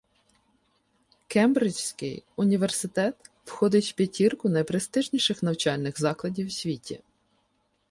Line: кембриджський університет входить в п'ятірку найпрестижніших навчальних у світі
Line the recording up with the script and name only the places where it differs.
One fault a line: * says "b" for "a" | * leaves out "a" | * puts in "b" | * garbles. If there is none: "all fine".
* puts in "закладів"